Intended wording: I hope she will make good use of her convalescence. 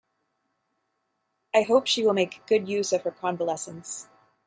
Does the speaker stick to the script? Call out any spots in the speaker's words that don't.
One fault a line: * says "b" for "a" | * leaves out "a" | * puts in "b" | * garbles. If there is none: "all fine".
all fine